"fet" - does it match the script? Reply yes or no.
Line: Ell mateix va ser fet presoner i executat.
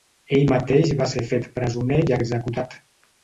yes